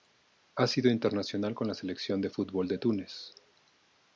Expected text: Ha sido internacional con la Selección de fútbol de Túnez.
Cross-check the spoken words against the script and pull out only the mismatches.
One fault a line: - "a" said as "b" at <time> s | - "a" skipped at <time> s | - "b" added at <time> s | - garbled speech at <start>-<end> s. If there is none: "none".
none